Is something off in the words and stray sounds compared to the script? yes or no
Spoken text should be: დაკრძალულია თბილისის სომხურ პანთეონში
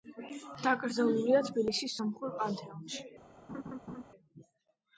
yes